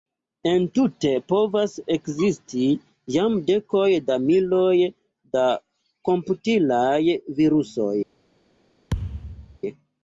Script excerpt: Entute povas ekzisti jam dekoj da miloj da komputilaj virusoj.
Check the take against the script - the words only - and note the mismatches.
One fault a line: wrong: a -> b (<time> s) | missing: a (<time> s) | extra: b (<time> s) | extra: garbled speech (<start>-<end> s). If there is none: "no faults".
no faults